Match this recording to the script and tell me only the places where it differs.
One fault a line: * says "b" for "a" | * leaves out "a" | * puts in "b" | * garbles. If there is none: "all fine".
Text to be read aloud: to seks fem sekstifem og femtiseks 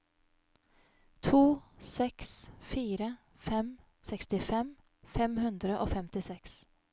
* puts in "fire"
* puts in "fem hundre"